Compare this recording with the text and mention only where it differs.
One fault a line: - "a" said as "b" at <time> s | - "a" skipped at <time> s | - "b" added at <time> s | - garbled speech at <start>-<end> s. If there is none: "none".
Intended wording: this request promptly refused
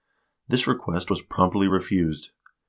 - "was" added at 1.1 s